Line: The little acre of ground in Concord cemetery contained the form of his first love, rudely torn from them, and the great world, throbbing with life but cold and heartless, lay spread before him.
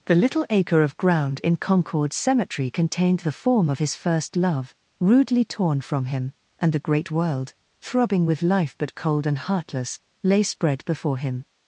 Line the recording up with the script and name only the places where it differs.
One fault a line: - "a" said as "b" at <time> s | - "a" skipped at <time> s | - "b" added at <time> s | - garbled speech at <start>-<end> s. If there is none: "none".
- "them" said as "him" at 6.0 s